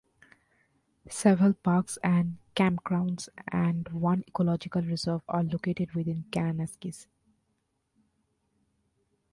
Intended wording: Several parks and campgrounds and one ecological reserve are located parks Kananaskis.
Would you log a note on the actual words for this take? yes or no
yes